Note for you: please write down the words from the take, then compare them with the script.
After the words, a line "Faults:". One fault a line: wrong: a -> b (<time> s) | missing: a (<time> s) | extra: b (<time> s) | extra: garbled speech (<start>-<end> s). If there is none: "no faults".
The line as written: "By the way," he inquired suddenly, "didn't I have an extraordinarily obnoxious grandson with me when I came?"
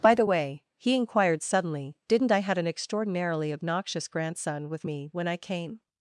"By the way," he inquired suddenly, "didn't I had an extraordinarily obnoxious grandson with me when I came?"
Faults:
wrong: have -> had (2.4 s)